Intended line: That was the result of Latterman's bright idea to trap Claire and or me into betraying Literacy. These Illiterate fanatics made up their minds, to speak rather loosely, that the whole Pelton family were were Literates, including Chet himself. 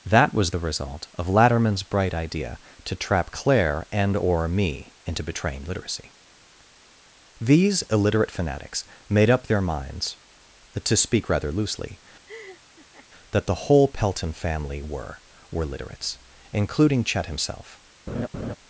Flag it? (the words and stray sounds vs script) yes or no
yes